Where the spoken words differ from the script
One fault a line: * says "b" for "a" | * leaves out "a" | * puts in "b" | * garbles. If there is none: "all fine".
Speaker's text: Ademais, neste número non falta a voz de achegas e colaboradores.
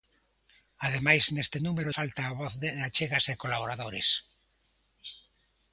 * leaves out "non"